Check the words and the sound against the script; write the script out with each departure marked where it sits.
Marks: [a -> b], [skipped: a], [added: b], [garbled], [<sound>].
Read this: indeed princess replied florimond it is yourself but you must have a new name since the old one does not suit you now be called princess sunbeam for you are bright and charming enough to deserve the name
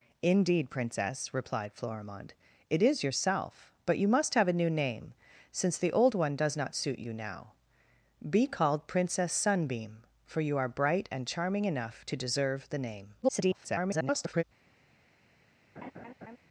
indeed princess replied florimond it is yourself but you must have a new name since the old one does not suit you now be called princess sunbeam for you are bright and charming enough to deserve the name [garbled] [laugh]